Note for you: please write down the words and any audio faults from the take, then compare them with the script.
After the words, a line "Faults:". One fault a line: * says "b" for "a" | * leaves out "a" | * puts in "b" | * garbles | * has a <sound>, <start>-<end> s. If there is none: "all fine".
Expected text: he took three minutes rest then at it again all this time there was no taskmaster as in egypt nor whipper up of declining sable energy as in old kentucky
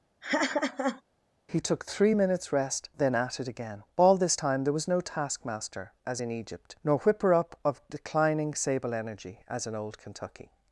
he took three minutes rest then at it again all this time there was no taskmaster as in egypt nor whipper up of declining sable energy as in old kentucky
Faults:
* has a laugh, 0.2-1.0 s